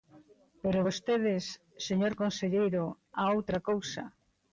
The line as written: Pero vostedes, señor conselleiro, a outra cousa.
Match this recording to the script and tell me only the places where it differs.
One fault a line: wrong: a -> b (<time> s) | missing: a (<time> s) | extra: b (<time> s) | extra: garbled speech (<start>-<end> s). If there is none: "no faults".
no faults